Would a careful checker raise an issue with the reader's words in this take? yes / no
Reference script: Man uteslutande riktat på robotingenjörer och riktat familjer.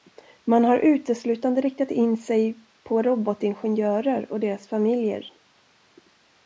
yes